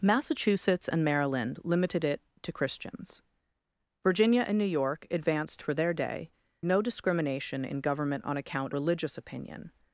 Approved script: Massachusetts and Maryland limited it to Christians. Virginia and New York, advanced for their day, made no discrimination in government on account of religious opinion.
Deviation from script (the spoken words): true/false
true